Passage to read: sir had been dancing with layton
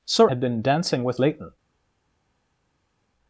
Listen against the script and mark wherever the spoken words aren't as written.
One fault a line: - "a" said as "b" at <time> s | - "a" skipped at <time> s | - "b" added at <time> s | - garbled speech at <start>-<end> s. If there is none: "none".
none